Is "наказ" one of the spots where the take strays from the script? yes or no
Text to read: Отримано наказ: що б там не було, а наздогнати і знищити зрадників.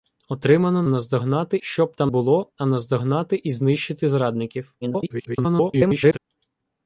yes